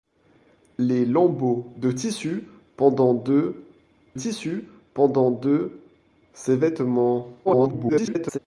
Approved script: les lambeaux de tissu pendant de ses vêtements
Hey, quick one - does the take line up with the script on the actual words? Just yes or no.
no